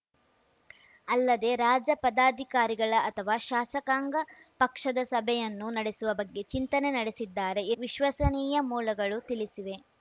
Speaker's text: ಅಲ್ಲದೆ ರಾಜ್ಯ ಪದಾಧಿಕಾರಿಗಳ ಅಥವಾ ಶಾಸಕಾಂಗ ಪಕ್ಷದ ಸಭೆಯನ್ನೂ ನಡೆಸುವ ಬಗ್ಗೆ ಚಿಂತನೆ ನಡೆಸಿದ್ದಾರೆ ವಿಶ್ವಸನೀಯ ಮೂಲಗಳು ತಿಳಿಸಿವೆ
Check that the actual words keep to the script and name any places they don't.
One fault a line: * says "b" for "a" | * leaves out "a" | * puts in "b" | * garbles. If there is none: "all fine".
all fine